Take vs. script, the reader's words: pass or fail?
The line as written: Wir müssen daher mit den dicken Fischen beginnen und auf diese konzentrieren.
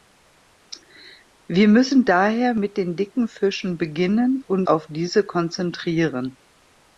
pass